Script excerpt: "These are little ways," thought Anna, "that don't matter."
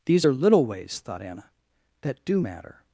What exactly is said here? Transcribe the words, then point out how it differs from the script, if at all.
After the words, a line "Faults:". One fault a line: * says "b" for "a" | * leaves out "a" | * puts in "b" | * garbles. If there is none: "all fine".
"These are little ways," thought Anna, "that do matter."
Faults:
* says "do" for "don't"